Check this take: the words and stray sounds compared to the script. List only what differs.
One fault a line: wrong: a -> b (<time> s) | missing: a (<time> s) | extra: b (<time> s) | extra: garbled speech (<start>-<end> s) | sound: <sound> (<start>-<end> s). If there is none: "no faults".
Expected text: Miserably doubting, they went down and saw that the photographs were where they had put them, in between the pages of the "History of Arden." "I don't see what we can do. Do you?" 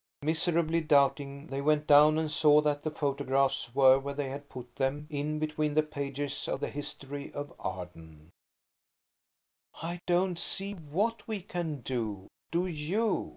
no faults